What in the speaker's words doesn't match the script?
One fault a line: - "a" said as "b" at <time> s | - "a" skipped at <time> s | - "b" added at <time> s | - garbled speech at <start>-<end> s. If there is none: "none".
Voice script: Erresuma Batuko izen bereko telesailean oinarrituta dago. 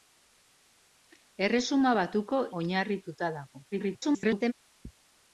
- "izen bereko telesailean" skipped at 2.4 s
- garbled speech at 3.7-4.5 s